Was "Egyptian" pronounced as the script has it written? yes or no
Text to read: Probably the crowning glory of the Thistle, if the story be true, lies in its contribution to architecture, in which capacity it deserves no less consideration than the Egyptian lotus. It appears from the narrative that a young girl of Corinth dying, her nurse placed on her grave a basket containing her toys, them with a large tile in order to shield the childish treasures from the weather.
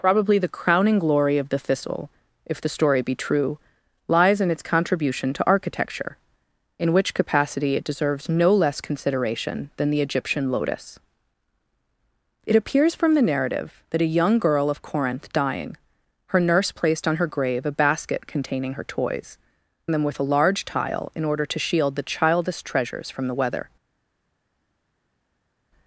yes